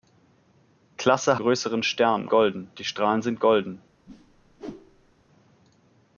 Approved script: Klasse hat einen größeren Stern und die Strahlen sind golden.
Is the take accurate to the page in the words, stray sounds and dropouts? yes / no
no